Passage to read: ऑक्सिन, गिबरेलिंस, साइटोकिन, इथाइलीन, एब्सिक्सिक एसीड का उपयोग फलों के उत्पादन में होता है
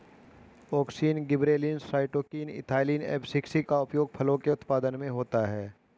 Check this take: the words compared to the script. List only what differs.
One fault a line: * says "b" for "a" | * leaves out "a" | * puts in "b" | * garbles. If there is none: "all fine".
* leaves out "एसीड"